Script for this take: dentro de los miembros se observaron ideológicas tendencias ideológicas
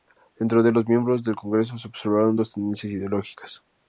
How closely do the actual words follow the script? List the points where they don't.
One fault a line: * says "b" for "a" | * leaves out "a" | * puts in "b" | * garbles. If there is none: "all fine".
* puts in "del congreso"
* says "dos" for "ideológicas"